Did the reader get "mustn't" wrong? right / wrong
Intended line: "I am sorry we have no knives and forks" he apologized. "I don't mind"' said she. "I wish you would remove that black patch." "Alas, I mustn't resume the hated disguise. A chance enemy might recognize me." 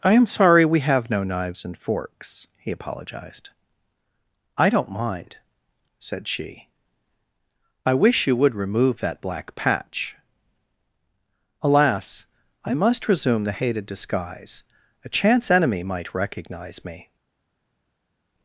wrong